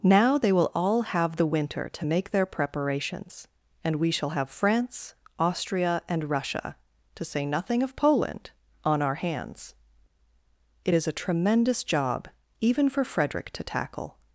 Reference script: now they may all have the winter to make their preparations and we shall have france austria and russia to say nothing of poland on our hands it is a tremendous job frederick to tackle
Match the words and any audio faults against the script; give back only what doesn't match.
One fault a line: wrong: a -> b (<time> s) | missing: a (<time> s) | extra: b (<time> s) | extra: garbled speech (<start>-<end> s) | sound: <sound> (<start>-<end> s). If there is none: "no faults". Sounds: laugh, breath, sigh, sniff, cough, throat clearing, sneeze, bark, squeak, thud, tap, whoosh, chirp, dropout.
wrong: may -> will (0.5 s)
extra: even for (12.6 s)